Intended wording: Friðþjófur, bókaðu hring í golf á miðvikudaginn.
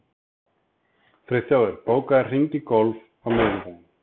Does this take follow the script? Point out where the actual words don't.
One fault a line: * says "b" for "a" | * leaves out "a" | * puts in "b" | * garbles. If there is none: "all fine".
all fine